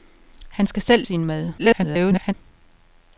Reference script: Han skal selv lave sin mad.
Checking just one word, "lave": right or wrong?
wrong